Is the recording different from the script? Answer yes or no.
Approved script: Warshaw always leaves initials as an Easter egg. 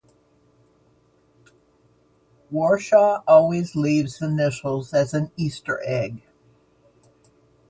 no